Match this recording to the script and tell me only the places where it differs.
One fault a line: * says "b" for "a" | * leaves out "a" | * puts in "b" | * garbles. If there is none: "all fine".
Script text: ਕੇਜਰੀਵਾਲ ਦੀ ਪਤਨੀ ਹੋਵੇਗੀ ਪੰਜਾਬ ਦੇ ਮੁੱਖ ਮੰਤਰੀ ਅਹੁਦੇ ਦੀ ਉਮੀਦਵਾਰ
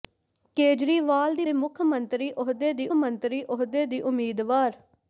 * says "ਦੇ ਮੁੱਖ ਮੰਤਰੀ ਅਹੁਦੇ ਦੀ" for "ਪਤਨੀ ਹੋਵੇਗੀ ਪੰਜਾਬ ਦੇ ਮੁੱਖ"